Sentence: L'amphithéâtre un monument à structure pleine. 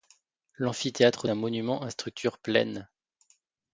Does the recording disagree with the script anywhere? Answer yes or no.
no